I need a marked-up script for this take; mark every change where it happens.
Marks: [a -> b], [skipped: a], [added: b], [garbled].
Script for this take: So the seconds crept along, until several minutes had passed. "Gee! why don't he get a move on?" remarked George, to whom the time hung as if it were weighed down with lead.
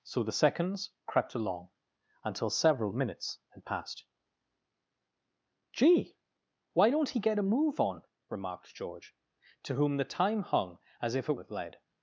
So the seconds crept along, until several minutes had passed. "Gee! why don't he get a move on?" remarked George, to whom the time hung as if it [skipped: were weighed down] with lead.